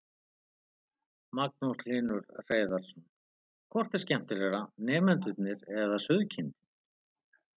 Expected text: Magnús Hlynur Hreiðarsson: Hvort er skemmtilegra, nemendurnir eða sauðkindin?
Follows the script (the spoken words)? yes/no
yes